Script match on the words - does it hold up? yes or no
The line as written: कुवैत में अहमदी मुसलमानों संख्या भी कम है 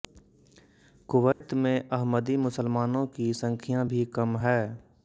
no